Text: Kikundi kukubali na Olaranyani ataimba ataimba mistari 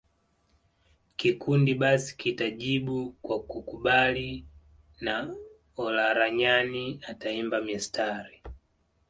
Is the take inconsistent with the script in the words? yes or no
yes